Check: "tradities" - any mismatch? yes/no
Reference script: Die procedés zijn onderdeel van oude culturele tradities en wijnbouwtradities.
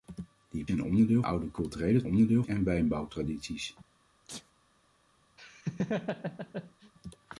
yes